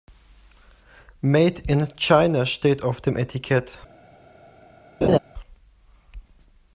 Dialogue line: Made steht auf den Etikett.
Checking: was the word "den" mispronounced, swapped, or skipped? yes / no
yes